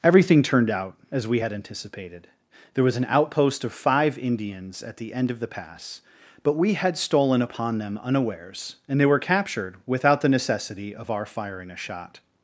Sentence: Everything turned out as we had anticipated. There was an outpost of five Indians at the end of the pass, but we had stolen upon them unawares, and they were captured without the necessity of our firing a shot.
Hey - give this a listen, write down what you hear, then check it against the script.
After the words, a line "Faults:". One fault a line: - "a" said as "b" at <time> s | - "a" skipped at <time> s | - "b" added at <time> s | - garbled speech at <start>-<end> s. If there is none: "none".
Everything turned out as we had anticipated. There was an outpost of five Indians at the end of the pass, but we had stolen upon them unawares, and they were captured without the necessity of our firing a shot.
Faults:
none